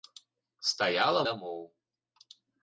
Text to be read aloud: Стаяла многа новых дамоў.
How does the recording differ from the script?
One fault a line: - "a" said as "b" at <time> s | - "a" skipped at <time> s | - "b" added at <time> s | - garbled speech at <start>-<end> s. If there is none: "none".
- "многа новых" skipped at 1.2 s